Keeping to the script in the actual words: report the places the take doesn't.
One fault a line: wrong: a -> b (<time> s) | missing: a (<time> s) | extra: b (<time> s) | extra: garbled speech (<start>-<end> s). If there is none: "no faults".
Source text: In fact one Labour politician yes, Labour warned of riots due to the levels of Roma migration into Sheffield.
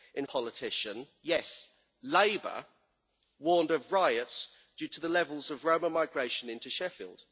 missing: fact one Labour (0.2 s)